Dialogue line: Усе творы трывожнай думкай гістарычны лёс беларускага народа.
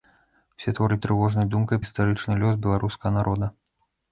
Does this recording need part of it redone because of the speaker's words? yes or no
no